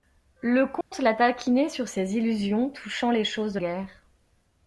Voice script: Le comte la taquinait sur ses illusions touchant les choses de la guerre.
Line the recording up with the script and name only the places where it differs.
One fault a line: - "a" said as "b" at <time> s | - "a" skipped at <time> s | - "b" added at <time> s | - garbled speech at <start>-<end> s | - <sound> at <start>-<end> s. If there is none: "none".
- dropout at 0.8-0.9 s
- "la" skipped at 3.6 s